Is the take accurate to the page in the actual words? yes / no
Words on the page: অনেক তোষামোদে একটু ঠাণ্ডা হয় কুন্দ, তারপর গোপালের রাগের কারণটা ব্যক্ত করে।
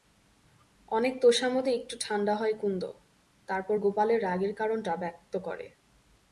yes